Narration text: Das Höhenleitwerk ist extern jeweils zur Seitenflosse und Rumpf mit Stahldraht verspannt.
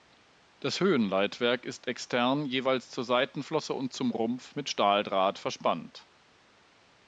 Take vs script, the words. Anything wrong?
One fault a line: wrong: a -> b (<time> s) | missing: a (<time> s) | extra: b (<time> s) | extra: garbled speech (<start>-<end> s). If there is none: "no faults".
extra: zum (3.9 s)